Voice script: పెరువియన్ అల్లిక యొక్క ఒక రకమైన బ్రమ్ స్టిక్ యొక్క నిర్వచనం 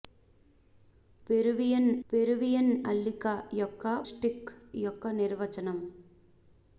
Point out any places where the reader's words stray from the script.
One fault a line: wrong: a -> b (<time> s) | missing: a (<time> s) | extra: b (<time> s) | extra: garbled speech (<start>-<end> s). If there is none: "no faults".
extra: పెరువియన్ (2.1 s)
missing: ఒక రకమైన బ్రమ్ (3.8 s)